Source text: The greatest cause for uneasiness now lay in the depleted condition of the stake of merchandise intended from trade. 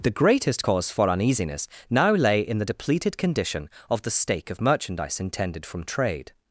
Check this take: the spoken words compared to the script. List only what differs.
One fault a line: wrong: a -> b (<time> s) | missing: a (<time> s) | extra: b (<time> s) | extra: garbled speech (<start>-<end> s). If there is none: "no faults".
no faults